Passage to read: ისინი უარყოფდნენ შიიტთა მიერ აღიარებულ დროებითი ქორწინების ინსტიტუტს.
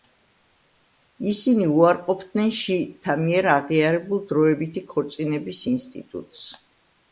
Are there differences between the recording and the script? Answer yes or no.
no